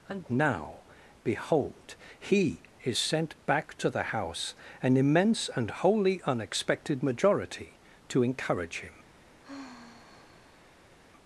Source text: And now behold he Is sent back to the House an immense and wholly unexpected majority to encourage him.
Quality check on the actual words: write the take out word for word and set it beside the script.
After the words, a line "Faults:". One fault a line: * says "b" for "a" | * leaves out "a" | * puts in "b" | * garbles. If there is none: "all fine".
And now behold he Is sent back to the House an immense and wholly unexpected majority to encourage him.
Faults:
all fine